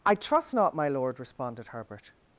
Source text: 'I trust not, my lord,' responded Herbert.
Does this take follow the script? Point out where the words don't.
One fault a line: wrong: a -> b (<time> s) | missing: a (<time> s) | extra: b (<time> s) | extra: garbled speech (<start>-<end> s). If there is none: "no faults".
no faults